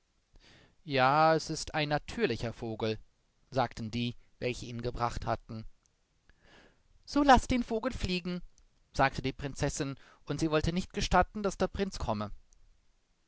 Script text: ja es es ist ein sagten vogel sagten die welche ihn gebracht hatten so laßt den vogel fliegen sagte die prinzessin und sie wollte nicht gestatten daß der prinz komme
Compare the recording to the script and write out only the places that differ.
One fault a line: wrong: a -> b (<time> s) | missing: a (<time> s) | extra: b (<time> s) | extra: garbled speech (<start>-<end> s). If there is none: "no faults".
missing: es (1.5 s)
wrong: sagten -> natürlicher (1.9 s)